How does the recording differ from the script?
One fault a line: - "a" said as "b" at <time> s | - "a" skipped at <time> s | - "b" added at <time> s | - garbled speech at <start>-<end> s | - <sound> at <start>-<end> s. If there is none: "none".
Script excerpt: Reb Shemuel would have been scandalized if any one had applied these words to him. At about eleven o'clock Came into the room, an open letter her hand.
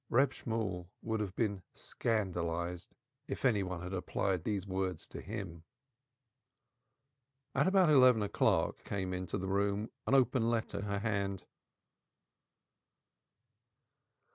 none